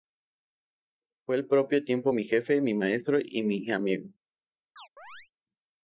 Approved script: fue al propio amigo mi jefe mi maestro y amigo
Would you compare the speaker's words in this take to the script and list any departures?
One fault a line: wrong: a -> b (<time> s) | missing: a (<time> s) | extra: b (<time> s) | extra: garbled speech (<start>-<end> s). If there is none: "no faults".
wrong: amigo -> tiempo (1.8 s)
extra: mi (3.4 s)